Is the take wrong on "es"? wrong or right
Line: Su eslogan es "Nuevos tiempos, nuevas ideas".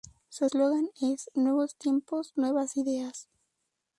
right